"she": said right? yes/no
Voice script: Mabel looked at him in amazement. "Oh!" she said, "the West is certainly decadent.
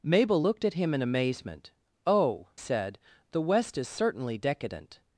no